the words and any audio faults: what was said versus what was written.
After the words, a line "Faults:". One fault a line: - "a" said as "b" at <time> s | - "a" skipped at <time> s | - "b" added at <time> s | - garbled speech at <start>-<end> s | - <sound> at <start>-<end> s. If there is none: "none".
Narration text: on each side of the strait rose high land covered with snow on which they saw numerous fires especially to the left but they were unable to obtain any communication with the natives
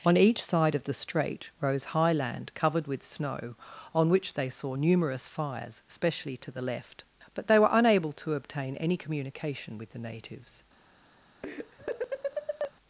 on each side of the strait rose high land covered with snow on which they saw numerous fires especially to the left but they were unable to obtain any communication with the natives
Faults:
- laugh at 11.4-12.7 s